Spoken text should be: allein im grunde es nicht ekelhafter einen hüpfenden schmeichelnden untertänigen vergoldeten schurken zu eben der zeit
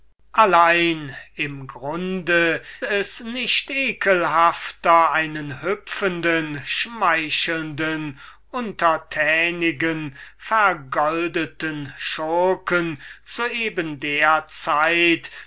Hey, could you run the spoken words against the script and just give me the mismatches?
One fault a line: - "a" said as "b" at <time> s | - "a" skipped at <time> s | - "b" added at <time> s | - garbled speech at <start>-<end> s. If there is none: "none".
none